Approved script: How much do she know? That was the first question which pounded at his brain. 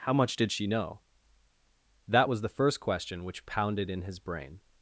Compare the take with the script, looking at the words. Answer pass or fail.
fail